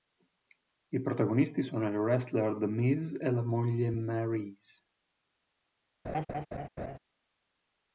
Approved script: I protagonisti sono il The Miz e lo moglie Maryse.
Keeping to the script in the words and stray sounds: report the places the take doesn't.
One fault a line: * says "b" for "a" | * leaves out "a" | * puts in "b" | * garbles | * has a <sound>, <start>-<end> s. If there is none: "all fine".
* puts in "wrestler"
* says "la" for "lo"
* has a laugh, 6.0-7.0 s